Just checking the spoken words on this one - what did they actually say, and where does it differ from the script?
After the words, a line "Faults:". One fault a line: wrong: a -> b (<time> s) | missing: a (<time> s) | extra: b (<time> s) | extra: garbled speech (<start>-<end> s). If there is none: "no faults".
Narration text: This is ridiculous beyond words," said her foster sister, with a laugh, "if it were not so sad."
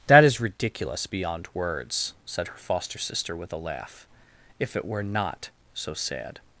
That is ridiculous beyond words," said her foster sister, with a laugh, "if it were not so sad."
Faults:
wrong: This -> That (0.1 s)